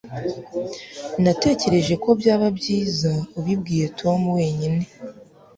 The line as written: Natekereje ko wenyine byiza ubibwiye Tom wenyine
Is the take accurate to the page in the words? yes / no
no